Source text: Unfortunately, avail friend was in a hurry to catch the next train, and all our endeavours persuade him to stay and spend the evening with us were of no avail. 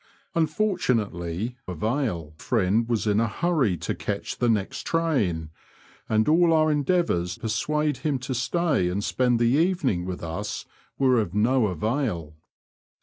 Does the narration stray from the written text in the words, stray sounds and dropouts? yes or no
no